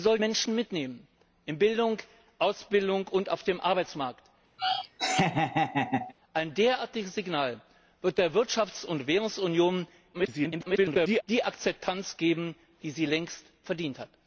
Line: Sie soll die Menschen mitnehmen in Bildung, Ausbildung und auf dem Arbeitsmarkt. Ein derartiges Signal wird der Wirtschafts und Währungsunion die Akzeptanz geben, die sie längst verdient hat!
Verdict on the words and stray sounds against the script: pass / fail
fail